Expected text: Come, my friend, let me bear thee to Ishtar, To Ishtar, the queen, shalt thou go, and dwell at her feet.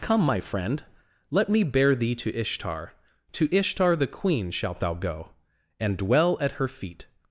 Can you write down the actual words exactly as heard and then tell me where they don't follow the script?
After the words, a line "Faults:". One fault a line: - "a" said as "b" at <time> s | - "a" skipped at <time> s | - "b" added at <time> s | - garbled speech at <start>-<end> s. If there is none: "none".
Come, my friend, let me bear thee to Ishtar, To Ishtar, the queen, shalt thou go, and dwell at her feet.
Faults:
none